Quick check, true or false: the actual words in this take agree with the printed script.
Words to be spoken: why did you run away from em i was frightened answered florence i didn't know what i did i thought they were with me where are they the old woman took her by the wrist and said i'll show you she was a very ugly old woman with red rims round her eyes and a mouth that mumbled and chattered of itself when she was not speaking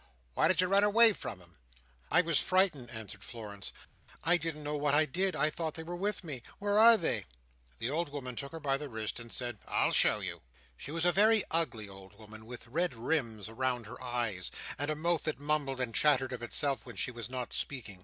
true